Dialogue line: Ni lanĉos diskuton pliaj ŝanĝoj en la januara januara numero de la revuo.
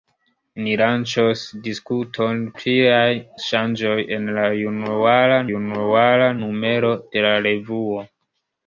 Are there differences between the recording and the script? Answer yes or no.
no